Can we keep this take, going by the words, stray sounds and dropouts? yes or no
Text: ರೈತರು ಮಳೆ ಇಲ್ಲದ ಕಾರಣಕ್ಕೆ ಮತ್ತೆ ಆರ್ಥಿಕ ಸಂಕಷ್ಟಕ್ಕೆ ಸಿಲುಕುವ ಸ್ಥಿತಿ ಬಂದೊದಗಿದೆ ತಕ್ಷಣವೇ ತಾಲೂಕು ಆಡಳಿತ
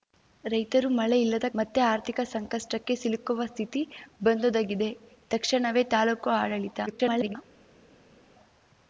no